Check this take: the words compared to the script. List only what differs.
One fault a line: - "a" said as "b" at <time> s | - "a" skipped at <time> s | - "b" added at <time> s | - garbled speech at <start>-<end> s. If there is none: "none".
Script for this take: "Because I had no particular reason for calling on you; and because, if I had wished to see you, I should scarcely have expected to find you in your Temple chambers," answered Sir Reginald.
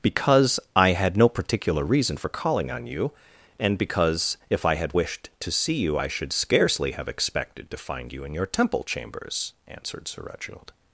none